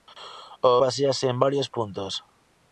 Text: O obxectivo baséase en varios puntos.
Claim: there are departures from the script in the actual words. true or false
true